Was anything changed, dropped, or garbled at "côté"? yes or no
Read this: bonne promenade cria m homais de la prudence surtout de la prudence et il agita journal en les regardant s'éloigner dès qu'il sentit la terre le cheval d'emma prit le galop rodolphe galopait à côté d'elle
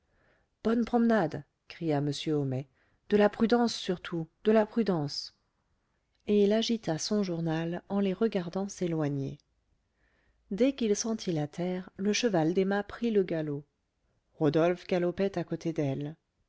no